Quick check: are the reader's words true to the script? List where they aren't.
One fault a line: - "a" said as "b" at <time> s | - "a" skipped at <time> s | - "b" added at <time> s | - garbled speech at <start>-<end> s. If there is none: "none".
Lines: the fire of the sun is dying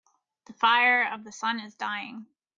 none